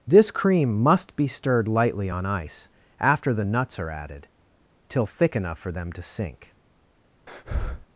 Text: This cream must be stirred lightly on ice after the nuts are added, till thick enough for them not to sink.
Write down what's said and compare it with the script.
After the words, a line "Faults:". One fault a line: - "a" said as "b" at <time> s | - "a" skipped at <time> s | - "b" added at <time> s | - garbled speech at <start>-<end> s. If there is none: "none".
This cream must be stirred lightly on ice after the nuts are added, till thick enough for them to sink.
Faults:
- "not" skipped at 5.9 s